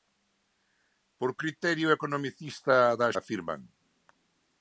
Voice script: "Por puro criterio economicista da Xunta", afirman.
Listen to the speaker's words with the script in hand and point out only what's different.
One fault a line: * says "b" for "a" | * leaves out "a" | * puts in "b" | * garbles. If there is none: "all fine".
* leaves out "puro"
* leaves out "Xunta"